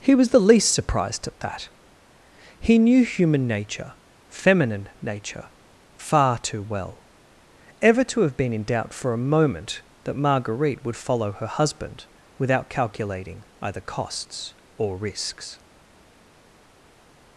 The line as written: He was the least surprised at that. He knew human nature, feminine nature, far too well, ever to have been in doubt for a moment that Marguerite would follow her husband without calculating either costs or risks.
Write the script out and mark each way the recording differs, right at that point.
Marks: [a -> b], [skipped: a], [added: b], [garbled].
He was the least surprised at that. He knew human nature, feminine nature, far too well, ever to have been in doubt for a moment that Marguerite would follow her husband without calculating either costs or risks.